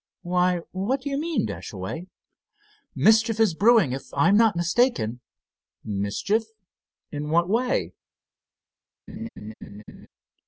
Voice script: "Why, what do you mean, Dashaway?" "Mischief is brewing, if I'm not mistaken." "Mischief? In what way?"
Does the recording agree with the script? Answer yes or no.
yes